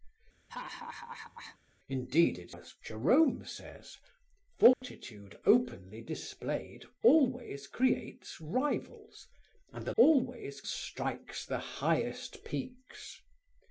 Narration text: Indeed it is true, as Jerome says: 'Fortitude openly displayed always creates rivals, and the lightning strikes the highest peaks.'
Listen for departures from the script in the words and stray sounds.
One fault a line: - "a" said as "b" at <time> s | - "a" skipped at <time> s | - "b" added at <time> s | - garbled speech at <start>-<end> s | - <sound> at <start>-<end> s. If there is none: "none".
- laugh at 0.5-1.6 s
- "is true" skipped at 2.5 s
- dropout at 4.7-4.8 s
- "lightning" said as "always" at 10.0 s